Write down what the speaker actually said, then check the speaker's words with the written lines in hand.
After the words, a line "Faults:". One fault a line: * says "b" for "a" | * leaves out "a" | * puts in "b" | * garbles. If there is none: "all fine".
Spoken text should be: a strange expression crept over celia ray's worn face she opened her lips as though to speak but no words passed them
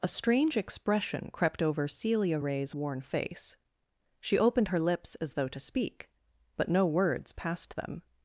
a strange expression crept over celia ray's worn face she opened her lips as though to speak but no words passed them
Faults:
all fine